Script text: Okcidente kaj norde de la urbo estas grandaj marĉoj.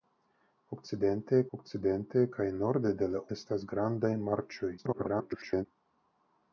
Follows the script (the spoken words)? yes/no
no